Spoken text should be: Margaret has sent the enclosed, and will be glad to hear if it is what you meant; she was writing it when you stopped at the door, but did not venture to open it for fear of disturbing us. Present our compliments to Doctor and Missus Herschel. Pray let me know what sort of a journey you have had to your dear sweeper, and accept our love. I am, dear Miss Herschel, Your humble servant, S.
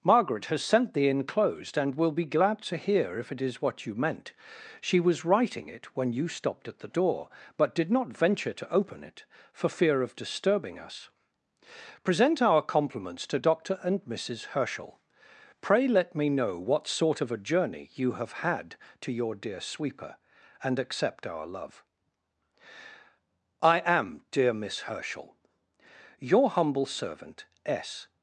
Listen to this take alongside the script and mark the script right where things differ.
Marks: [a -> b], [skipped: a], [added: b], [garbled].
Margaret has sent the enclosed, and will be glad to hear if it is what you meant; she was writing it when you stopped at the door, but did not venture to open it for fear of disturbing us. Present our compliments to Doctor and Missus Herschel. Pray let me know what sort of a journey you have had to your dear sweeper, and accept our love. I am, dear Miss Herschel, Your humble servant, S.